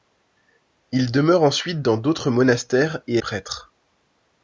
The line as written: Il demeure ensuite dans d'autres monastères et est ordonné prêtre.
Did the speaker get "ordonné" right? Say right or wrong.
wrong